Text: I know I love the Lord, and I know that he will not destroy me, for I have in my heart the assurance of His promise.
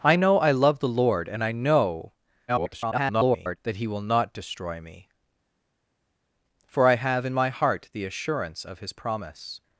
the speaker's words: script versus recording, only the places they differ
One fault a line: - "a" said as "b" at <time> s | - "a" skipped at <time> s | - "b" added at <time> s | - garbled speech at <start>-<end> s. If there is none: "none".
- garbled speech at 2.5-3.6 s